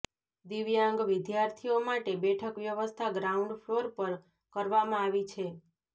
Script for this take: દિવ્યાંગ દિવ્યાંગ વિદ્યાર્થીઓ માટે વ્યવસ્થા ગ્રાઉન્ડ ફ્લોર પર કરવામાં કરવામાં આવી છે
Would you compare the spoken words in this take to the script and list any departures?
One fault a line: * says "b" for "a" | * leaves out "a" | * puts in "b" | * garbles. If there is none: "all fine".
* leaves out "દિવ્યાંગ"
* puts in "બેઠક"
* leaves out "કરવામાં"